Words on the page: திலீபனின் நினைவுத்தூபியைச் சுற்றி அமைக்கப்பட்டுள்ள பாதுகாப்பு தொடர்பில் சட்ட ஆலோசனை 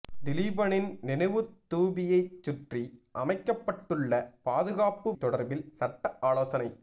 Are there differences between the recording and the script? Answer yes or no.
no